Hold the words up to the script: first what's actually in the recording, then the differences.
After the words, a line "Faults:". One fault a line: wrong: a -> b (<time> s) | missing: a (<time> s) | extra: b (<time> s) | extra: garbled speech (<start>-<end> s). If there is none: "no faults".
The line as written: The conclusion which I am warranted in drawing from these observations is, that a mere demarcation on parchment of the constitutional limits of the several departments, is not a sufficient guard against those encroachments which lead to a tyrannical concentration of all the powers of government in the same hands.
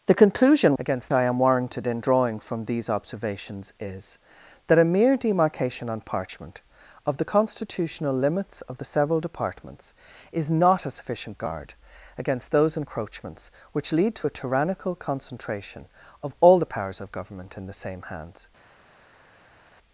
The conclusion against I am warranted in drawing from these observations is, that a mere demarcation on parchment of the constitutional limits of the several departments, is not a sufficient guard against those encroachments which lead to a tyrannical concentration of all the powers of government in the same hands.
Faults:
wrong: which -> against (0.8 s)